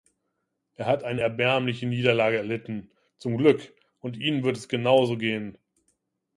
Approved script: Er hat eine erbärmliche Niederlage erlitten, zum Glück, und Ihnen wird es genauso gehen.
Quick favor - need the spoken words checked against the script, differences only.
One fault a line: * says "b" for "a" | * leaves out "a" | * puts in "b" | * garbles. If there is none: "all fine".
all fine